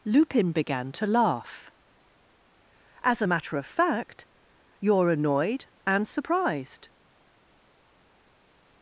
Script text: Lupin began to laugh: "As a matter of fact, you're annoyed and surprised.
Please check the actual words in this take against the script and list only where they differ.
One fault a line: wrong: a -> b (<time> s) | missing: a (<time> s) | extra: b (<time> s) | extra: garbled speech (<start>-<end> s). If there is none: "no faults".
no faults